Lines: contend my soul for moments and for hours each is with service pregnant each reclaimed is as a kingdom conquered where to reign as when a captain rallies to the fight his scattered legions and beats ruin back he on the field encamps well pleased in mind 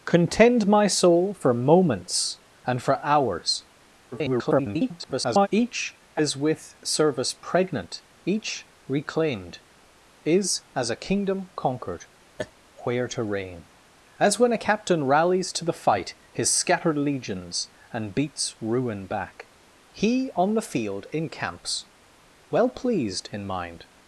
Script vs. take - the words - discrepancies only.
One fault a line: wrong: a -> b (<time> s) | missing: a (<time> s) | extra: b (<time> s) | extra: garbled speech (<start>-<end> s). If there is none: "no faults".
extra: garbled speech (4.1-5.5 s)